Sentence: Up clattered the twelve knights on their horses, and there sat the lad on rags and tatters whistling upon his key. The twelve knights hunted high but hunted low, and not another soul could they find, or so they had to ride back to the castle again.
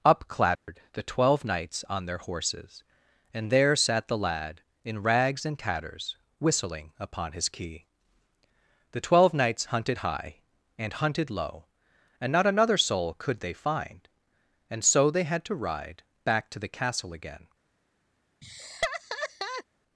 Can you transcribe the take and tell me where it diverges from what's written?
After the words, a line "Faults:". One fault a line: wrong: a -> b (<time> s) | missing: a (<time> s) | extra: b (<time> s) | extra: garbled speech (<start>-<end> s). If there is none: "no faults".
Up clattered the twelve knights on their horses, and there sat the lad in rags and tatters whistling upon his key. The twelve knights hunted high and hunted low, and not another soul could they find, and so they had to ride back to the castle again.
Faults:
wrong: on -> in (4.8 s)
wrong: but -> and (10.8 s)
wrong: or -> and (14.7 s)